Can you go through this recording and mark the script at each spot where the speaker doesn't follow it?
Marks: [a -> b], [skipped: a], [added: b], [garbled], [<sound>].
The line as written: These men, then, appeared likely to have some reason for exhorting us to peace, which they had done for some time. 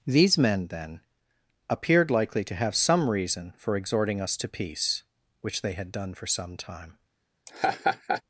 These men, then, appeared likely to have some reason for exhorting us to peace, which they had done for some time. [laugh]